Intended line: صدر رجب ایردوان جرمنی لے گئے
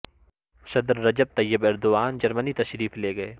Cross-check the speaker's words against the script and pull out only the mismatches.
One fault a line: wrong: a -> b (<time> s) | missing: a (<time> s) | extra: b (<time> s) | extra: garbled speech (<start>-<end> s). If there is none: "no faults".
extra: طیب (1.4 s)
extra: تشریف (2.5 s)